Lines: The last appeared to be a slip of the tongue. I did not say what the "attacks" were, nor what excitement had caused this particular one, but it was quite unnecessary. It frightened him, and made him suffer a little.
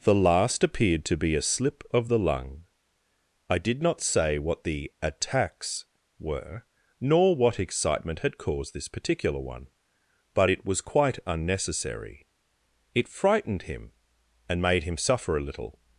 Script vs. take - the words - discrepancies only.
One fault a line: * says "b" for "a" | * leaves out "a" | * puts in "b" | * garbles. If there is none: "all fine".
* says "lung" for "tongue"